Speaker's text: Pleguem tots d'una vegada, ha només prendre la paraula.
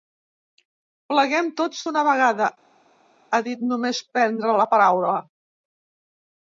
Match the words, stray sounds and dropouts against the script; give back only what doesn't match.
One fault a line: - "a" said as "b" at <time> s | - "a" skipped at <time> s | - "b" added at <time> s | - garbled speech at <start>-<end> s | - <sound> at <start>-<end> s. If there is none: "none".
- "dit" added at 3.5 s